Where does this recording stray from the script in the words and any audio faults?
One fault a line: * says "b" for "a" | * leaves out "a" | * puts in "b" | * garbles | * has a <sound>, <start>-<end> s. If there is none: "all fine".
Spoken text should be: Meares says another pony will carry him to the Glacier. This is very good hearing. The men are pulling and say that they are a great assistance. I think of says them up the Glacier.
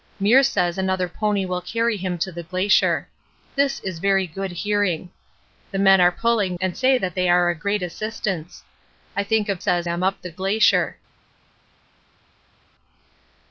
all fine